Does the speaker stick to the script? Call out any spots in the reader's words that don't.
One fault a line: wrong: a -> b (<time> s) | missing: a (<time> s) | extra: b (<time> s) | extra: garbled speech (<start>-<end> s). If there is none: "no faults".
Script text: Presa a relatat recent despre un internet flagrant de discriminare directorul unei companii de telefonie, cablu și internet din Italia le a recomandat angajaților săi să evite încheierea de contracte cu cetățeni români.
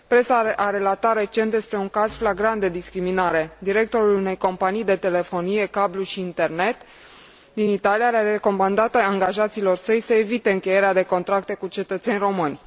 wrong: internet -> caz (1.9 s)